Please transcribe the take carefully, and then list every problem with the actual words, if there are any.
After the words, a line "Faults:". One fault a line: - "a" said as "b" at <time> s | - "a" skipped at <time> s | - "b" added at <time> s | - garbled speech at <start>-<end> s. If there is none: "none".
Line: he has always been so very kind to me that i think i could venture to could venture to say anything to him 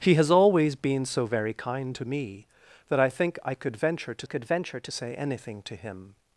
he has always been so very kind to me that i think i could venture to could venture to say anything to him
Faults:
none